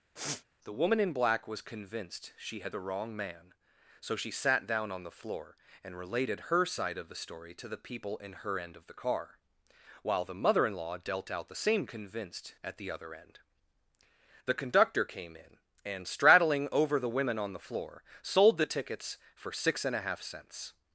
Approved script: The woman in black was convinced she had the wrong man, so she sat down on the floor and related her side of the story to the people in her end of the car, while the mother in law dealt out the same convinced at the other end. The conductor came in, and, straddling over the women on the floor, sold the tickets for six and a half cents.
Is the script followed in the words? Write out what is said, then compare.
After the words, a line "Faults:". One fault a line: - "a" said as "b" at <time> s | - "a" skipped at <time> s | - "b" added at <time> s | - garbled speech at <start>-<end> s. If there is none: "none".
The woman in black was convinced she had the wrong man, so she sat down on the floor and related her side of the story to the people in her end of the car, while the mother in law dealt out the same convinced at the other end. The conductor came in, and, straddling over the women on the floor, sold the tickets for six and a half cents.
Faults:
none